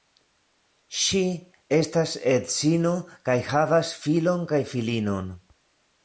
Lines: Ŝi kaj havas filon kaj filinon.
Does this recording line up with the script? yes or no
no